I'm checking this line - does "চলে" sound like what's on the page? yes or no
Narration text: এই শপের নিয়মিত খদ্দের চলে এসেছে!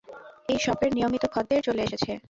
yes